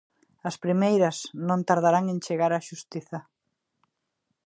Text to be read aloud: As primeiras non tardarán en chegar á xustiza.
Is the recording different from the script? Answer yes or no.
no